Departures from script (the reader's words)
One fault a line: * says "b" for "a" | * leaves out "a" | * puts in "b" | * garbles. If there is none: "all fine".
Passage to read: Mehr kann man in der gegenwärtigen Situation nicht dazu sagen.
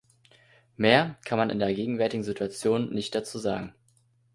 all fine